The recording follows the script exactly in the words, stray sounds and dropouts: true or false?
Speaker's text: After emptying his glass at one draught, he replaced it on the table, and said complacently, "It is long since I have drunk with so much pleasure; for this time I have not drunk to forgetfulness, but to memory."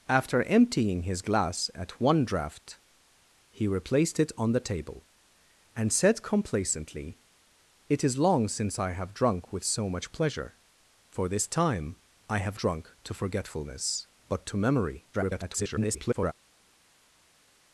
false